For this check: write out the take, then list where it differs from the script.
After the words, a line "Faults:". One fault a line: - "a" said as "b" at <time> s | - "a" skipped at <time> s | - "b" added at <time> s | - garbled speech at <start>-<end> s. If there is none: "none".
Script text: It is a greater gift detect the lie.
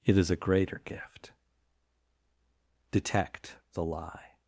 It is a greater gift detect the lie.
Faults:
none